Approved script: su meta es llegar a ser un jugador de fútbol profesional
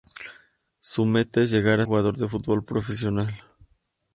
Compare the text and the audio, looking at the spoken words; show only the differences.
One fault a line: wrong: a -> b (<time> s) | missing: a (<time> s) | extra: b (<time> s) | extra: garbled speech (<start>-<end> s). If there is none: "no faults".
missing: ser un (1.9 s)